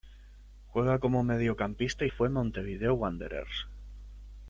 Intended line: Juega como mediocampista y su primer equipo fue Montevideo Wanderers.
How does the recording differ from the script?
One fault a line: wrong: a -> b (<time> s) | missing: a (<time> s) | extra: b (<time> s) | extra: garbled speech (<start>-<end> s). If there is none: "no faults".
missing: su primer equipo (2.1 s)